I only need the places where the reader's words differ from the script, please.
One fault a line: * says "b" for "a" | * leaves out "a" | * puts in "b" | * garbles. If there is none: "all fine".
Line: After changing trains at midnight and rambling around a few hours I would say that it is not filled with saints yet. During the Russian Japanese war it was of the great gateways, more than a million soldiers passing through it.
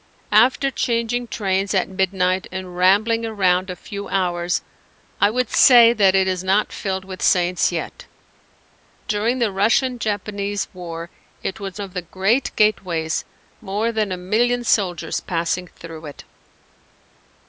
all fine